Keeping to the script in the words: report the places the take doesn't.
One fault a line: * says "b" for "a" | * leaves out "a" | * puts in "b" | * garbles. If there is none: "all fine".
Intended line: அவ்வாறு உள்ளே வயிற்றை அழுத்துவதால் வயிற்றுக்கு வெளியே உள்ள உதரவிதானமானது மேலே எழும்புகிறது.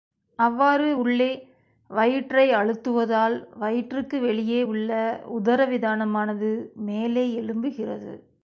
all fine